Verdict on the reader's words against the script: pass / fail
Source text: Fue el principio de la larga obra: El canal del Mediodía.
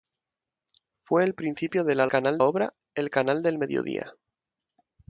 fail